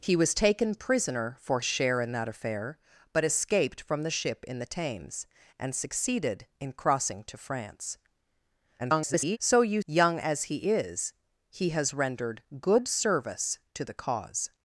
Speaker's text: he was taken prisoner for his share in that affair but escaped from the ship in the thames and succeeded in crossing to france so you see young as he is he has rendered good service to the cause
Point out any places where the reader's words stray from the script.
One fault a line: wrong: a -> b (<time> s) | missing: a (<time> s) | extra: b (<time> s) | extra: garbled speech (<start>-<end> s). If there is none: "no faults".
missing: his (1.6 s)
extra: garbled speech (8.8-9.4 s)
missing: see (9.8 s)